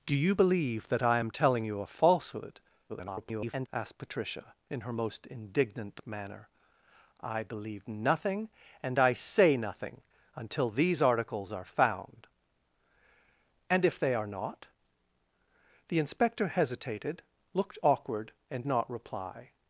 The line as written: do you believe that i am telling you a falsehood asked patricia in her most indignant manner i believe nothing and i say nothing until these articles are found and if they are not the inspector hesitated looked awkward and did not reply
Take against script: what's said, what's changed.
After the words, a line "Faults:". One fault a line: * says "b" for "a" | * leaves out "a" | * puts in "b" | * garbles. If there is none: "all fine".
do you believe that i am telling you a falsehood [garbled] asked patricia in her most indignant manner i believe nothing and i say nothing until these articles are found and if they are not the inspector hesitated looked awkward and not reply
Faults:
* garbles
* leaves out "did"